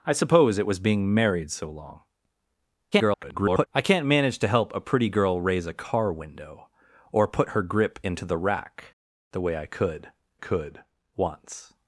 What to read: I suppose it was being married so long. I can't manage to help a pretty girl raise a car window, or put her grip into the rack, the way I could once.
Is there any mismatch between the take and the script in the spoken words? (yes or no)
yes